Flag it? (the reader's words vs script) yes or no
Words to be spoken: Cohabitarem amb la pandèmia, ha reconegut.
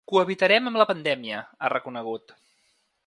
no